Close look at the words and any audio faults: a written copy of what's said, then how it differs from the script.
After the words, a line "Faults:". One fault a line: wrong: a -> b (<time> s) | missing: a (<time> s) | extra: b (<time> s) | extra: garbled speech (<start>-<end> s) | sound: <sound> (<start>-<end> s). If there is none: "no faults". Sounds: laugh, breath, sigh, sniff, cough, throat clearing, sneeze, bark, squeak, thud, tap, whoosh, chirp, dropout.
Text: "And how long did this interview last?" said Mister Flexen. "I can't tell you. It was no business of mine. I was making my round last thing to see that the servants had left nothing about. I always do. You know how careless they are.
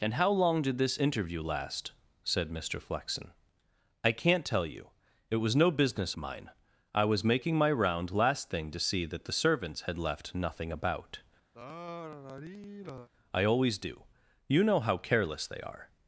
"And how long did this interview last?" said Mister Flexen. "I can't tell you. It was no business mine. I was making my round last thing to see that the servants had left nothing about. I always do. You know how careless they are.
Faults:
missing: of (6.2 s)
sound: sigh (11.5-13.1 s)